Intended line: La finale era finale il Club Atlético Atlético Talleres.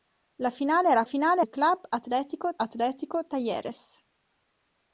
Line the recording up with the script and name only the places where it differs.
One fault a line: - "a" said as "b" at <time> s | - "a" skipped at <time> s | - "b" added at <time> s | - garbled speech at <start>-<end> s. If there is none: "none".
none